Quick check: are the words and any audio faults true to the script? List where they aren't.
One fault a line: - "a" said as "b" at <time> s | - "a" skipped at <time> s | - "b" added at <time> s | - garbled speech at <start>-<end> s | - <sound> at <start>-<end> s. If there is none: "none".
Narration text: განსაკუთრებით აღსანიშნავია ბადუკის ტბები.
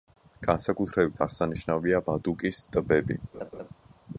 - laugh at 3.3-3.7 s